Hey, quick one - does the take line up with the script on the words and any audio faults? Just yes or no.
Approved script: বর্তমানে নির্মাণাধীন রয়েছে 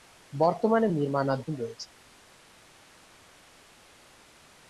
yes